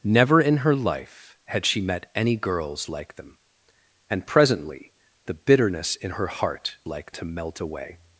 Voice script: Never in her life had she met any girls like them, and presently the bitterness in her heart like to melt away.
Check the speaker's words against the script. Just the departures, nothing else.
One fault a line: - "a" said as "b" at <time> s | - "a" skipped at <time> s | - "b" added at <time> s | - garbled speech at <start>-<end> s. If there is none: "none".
none